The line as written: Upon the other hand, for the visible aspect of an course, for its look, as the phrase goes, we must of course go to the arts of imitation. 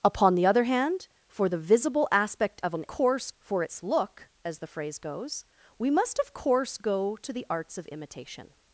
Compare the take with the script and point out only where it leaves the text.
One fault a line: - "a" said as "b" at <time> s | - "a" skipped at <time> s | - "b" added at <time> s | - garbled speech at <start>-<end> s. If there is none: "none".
none